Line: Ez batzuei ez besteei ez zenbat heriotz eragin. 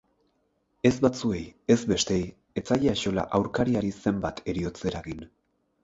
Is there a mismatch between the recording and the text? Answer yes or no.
yes